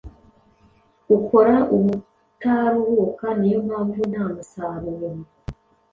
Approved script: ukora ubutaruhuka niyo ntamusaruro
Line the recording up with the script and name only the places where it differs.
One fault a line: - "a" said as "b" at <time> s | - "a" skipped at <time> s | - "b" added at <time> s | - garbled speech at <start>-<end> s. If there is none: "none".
- "mpamvu" added at 3.7 s